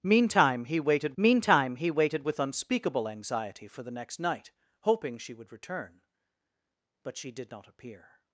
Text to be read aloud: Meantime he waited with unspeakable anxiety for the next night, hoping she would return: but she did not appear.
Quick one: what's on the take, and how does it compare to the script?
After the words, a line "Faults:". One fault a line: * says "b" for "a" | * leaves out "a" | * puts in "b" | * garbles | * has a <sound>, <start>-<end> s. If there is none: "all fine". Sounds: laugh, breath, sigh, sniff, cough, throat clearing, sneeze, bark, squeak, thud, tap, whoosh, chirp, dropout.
Meantime he waited meantime he waited with unspeakable anxiety for the next night, hoping she would return: but she did not appear.
Faults:
* puts in "meantime he waited"